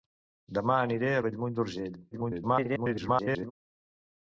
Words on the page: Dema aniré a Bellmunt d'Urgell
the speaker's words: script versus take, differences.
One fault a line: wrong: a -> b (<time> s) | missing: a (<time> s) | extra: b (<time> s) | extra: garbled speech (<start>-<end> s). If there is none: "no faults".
extra: garbled speech (2.1-3.5 s)